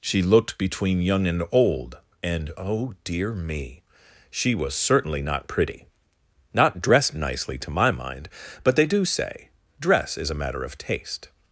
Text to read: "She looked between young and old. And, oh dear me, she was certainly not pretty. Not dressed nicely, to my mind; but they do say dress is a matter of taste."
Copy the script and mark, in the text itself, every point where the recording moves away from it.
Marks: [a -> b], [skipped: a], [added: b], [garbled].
"She looked between young and old. And, oh dear me, she was certainly not pretty. Not dressed nicely, to my mind; but they do say dress is a matter of taste."